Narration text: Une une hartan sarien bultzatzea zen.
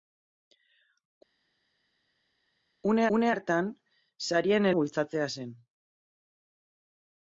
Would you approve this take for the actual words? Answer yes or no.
yes